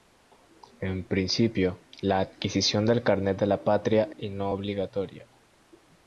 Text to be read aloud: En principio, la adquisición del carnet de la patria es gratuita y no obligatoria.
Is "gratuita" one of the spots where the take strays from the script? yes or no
yes